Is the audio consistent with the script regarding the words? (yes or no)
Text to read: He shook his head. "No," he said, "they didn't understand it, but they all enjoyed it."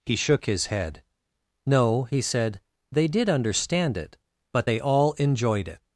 no